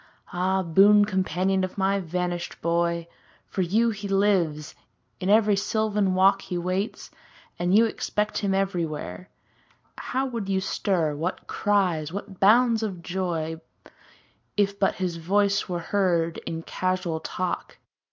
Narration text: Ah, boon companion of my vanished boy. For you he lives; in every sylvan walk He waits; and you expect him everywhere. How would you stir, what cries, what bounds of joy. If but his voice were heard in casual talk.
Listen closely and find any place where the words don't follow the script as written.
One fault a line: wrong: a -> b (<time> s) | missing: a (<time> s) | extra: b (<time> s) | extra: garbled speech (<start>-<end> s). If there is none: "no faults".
no faults